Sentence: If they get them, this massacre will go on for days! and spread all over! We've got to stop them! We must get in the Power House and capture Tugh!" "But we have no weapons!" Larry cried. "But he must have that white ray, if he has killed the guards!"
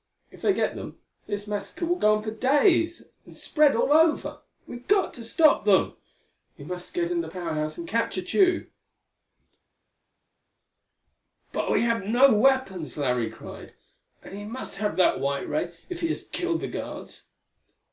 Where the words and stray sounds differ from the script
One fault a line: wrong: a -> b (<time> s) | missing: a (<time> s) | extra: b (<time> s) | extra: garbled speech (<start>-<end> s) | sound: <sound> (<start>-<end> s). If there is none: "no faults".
wrong: But -> And (14.2 s)